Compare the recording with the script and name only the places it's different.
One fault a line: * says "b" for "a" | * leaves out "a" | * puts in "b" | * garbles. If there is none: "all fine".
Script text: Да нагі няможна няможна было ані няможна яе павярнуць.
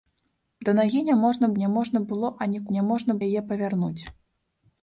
all fine